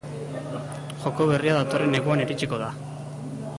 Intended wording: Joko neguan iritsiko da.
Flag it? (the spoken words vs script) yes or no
yes